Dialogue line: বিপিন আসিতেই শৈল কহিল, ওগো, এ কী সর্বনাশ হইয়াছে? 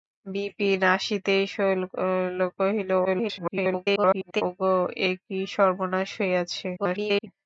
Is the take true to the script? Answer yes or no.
no